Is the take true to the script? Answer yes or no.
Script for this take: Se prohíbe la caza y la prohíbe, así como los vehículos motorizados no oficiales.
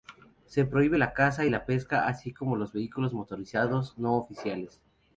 no